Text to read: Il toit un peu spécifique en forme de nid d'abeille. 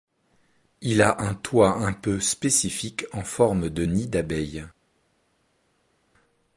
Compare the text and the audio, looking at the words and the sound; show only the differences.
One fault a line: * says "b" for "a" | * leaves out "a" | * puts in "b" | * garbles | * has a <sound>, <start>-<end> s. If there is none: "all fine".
* puts in "a un"